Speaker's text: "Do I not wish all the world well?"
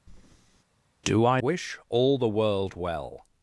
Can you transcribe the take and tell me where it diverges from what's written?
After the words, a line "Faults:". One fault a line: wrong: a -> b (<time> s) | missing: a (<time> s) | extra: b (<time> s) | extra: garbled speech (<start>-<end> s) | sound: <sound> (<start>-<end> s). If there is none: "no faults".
"Do I wish all the world well?"
Faults:
sound: breath (0.1-0.6 s)
missing: not (1.4 s)